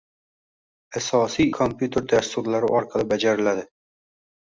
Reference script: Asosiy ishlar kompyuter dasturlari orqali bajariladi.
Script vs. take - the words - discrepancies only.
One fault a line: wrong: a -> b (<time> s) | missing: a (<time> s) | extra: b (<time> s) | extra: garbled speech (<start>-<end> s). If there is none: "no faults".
missing: ishlar (1.5 s)